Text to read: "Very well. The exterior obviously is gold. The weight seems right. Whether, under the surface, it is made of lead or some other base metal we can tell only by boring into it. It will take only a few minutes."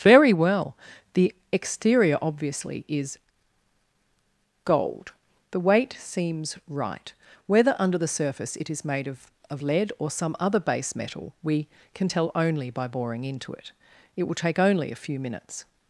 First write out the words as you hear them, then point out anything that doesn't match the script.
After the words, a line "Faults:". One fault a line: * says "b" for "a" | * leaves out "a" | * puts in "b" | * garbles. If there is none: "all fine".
"Very well. The exterior obviously is gold. The weight seems right. Whether, under the surface, it is made of of lead or some other base metal we can tell only by boring into it. It will take only a few minutes."
Faults:
* puts in "of"